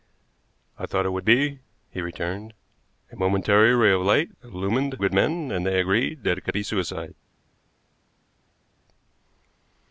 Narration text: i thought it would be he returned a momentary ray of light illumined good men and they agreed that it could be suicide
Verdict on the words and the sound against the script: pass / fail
pass